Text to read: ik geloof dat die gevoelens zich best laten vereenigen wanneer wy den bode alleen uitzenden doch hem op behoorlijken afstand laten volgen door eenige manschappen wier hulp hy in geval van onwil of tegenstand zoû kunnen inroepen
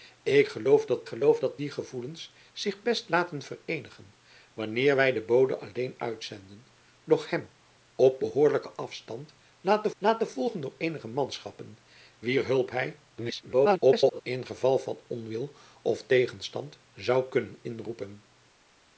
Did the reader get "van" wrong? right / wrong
right